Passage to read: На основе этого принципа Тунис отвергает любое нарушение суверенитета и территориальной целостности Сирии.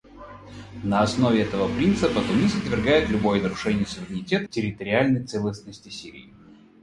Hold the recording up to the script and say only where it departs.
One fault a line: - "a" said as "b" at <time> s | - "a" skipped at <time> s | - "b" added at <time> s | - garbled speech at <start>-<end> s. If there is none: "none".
- "и" skipped at 4.5 s